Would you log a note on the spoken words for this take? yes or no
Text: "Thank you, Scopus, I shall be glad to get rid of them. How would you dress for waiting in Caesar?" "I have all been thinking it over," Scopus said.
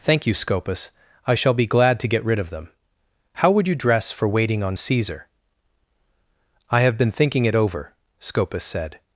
yes